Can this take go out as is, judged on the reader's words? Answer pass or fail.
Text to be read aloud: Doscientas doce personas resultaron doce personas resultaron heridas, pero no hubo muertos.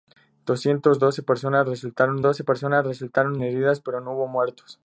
pass